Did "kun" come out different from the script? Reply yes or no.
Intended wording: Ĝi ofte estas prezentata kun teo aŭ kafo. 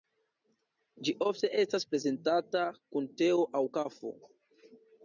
no